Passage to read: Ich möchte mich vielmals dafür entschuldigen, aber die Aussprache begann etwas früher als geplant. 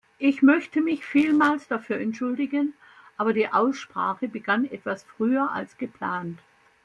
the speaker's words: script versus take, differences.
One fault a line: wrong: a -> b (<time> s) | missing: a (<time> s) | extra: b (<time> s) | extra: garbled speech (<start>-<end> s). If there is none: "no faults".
no faults